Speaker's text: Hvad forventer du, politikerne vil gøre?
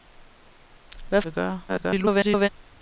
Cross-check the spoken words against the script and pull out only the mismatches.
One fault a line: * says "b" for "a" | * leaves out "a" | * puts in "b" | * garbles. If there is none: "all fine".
* leaves out "forventer du politikerne"
* garbles